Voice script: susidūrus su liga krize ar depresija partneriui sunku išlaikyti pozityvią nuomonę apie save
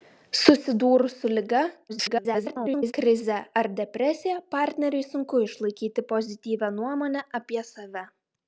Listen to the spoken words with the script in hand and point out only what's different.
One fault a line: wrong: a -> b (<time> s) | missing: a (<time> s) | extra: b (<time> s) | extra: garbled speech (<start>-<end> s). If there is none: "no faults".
extra: garbled speech (1.9-2.9 s)